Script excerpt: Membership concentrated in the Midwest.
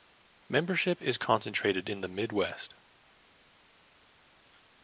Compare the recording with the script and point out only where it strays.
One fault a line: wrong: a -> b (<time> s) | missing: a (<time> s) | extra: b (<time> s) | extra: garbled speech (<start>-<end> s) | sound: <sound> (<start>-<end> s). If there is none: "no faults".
extra: is (1.0 s)